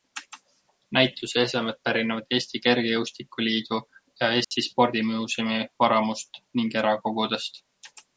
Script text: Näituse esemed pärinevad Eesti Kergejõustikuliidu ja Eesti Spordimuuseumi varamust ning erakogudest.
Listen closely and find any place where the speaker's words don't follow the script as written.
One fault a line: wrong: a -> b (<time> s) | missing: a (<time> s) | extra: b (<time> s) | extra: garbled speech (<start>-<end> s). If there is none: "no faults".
no faults